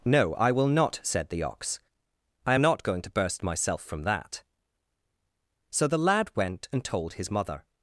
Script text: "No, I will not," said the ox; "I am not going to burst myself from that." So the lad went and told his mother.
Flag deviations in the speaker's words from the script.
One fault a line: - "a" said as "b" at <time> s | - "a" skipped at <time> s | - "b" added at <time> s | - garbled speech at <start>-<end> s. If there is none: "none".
none